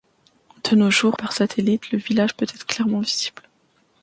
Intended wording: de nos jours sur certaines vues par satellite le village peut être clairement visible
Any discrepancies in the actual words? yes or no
yes